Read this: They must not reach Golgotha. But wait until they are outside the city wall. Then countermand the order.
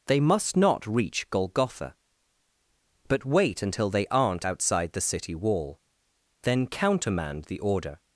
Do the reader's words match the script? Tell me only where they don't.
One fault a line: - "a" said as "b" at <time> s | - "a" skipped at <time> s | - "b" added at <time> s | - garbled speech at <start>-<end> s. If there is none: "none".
- "are" said as "aren't" at 4.1 s